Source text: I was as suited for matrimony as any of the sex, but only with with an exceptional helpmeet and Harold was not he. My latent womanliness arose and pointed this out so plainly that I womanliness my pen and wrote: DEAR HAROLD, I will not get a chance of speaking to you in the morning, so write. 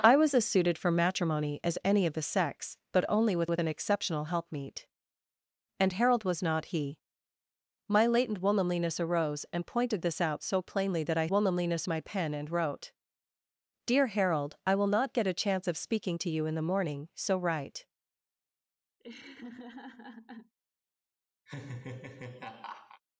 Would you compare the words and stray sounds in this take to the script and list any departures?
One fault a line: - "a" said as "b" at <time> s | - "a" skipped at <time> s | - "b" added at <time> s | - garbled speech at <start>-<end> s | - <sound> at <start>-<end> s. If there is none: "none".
- laugh at 19.0-20.5 s
- laugh at 21.5-23.0 s